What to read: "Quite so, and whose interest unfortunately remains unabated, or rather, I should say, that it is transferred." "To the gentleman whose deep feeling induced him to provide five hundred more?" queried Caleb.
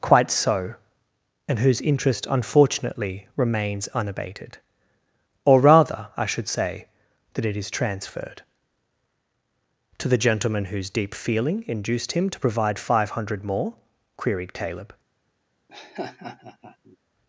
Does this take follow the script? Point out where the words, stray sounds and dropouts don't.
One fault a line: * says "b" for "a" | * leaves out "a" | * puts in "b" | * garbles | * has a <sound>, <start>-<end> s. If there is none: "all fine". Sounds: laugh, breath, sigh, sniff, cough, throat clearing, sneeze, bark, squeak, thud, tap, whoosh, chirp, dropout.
* has a laugh, 15.7-17.0 s